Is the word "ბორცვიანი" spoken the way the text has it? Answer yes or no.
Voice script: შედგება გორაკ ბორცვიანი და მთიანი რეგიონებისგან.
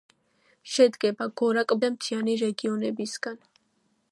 no